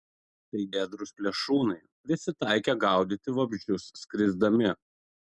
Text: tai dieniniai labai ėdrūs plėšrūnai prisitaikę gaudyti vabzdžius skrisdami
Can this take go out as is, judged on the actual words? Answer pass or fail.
fail